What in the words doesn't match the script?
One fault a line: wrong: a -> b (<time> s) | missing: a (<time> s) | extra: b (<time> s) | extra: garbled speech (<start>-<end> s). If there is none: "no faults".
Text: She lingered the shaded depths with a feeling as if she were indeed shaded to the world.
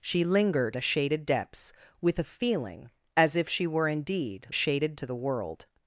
no faults